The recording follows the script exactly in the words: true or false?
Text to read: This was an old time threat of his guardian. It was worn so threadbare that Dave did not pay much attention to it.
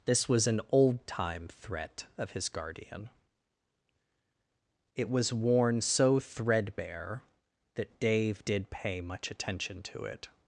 false